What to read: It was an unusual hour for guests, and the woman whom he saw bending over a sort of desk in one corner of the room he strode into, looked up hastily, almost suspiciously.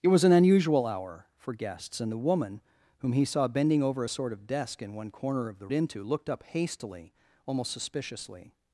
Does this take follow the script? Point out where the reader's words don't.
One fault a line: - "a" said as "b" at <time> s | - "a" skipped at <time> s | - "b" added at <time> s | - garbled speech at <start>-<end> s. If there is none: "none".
- "room he strode" skipped at 5.7 s